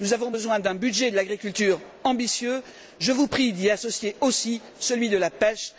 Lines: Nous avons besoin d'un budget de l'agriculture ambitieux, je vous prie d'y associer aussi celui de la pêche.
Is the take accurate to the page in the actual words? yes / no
yes